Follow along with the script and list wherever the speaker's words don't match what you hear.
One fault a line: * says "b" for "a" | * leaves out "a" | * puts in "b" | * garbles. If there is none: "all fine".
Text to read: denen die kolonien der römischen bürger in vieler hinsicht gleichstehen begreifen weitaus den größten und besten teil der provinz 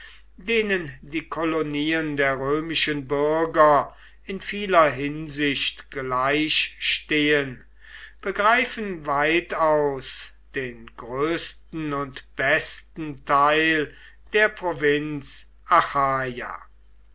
all fine